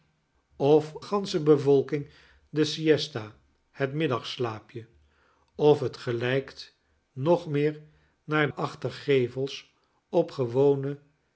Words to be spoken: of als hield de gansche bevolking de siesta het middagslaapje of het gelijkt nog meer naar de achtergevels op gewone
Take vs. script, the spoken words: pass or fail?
fail